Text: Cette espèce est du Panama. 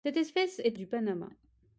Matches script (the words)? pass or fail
pass